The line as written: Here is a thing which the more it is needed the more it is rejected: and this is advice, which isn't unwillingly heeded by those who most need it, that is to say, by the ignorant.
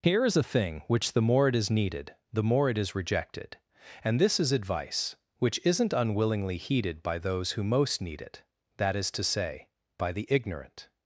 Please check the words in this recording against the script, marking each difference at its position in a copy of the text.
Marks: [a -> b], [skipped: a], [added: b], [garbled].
Here is a thing which the more it is needed the more it is rejected: and this is advice, which isn't unwillingly heeded by those who most need it, that is to say, by the ignorant.